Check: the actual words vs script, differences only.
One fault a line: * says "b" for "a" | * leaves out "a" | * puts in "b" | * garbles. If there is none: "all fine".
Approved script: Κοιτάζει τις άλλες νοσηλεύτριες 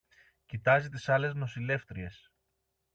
all fine